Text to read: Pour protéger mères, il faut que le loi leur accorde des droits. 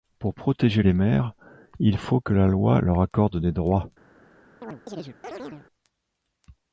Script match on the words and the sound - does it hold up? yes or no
no